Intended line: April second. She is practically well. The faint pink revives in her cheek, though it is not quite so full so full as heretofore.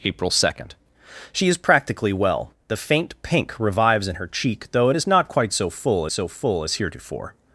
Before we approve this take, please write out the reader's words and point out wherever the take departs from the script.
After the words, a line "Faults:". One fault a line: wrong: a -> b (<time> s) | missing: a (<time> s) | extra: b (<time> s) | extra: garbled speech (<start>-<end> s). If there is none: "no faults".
April second. She is practically well. The faint pink revives in her cheek, though it is not quite so full so full as heretofore.
Faults:
no faults